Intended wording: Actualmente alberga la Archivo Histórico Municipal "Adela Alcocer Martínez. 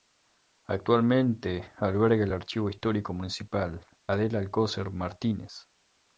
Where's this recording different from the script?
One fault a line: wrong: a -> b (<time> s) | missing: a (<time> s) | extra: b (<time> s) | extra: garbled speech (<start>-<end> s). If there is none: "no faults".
wrong: la -> el (2.2 s)